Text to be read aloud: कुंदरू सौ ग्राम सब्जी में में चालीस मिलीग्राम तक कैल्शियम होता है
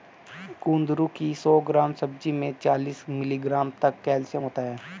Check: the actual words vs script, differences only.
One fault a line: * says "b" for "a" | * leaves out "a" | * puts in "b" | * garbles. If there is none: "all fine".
* puts in "की"
* leaves out "में"